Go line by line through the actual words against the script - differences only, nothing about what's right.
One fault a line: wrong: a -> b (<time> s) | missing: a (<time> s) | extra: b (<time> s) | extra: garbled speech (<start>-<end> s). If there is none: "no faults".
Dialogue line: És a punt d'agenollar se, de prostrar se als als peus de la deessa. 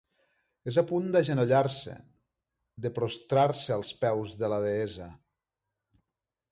missing: als (3.9 s)